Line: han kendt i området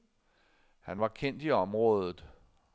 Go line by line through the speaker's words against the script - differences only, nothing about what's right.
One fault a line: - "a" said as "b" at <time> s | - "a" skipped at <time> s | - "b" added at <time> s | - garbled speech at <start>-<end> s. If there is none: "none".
- "var" added at 1.0 s